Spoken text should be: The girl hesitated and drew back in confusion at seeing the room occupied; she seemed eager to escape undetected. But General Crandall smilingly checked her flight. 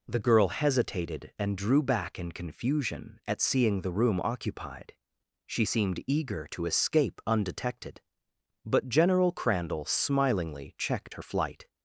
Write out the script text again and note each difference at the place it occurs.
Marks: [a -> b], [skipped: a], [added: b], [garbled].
The girl hesitated and drew back in confusion at seeing the room occupied; she seemed eager to escape undetected. But General Crandall smilingly checked her flight.